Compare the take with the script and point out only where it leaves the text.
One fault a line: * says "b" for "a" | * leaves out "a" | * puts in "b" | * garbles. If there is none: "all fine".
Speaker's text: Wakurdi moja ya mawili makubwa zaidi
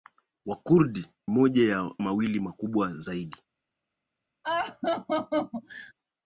all fine